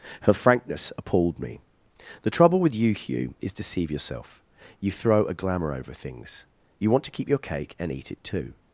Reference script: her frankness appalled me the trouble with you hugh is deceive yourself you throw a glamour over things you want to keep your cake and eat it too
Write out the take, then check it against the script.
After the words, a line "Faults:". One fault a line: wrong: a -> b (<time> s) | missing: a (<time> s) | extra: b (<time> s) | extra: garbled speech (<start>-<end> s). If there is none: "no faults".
her frankness appalled me the trouble with you hugh is deceive yourself you throw a glamour over things you want to keep your cake and eat it too
Faults:
no faults